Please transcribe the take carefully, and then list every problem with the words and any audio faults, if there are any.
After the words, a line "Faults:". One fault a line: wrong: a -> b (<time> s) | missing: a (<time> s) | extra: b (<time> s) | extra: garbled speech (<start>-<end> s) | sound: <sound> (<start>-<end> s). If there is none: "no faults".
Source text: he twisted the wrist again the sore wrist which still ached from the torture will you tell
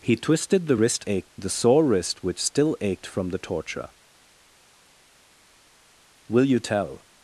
he twisted the wrist ached the sore wrist which still ached from the torture will you tell
Faults:
wrong: again -> ached (1.1 s)